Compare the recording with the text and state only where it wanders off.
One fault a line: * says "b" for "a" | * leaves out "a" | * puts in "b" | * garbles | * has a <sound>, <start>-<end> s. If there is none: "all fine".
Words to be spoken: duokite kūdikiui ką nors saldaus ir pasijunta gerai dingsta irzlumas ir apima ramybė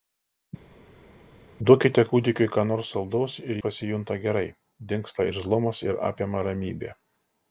all fine